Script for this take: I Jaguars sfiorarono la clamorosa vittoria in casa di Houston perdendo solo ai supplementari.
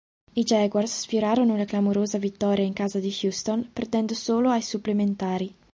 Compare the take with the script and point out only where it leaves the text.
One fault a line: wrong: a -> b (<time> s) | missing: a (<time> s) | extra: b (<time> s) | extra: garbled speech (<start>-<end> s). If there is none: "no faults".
no faults